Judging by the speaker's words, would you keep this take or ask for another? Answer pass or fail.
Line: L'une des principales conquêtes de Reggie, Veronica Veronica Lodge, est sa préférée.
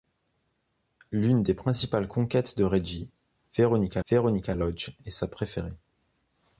pass